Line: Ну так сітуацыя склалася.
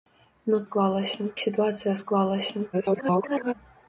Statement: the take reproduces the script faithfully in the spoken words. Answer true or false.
false